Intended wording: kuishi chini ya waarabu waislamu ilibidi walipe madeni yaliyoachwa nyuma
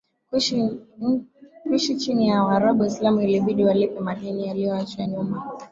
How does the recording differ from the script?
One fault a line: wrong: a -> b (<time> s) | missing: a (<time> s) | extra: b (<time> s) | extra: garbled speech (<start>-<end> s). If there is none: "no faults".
no faults